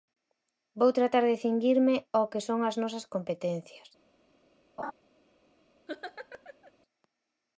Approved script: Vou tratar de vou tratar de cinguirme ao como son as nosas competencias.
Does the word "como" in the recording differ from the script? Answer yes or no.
yes